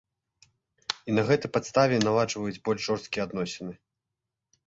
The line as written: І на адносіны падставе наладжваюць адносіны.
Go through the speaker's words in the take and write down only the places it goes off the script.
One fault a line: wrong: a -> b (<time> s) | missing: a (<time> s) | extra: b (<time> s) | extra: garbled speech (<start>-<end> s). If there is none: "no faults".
wrong: адносіны -> гэтай (1.3 s)
extra: больш жорсткія (2.7 s)